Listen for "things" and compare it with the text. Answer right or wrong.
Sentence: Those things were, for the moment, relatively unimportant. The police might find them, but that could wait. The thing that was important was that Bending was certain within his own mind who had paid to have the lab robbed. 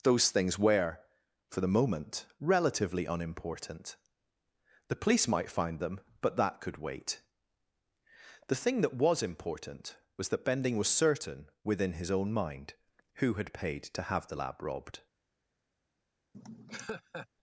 right